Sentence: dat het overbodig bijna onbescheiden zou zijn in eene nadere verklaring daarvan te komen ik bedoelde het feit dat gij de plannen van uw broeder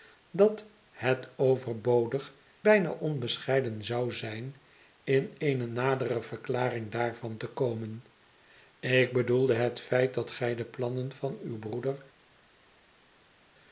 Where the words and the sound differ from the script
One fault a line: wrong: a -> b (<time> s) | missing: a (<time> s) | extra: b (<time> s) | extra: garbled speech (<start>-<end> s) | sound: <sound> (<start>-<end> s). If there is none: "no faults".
no faults